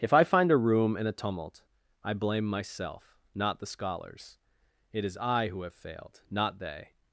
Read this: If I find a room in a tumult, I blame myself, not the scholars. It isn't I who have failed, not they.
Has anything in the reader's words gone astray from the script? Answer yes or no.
yes